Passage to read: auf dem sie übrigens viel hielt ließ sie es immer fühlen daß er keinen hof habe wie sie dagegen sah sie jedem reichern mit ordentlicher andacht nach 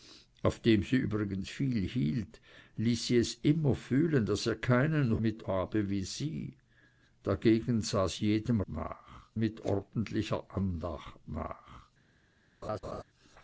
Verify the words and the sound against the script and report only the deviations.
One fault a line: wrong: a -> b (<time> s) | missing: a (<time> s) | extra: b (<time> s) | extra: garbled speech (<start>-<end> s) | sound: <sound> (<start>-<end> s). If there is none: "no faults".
wrong: hof -> mit (5.2 s)
wrong: reichern -> nach (8.7 s)
sound: laugh (12.6-13.0 s)